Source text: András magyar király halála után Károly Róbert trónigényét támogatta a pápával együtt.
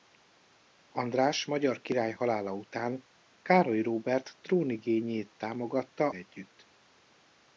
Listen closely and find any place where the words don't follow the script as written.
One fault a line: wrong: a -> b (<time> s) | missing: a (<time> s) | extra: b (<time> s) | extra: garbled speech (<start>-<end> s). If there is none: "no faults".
missing: a pápával (6.1 s)